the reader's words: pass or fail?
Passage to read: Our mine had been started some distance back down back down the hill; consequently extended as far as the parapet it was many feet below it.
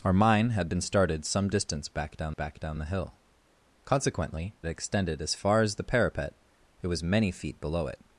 pass